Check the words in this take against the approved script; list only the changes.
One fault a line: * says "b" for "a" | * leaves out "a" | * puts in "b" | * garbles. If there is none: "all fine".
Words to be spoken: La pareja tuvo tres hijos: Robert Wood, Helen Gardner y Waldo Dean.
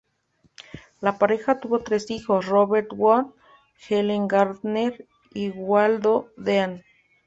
all fine